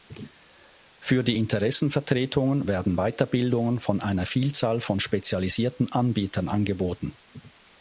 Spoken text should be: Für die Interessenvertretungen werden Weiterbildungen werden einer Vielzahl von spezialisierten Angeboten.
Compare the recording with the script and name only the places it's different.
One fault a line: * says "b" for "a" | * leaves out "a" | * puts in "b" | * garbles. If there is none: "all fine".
* says "von" for "werden"
* puts in "Anbietern"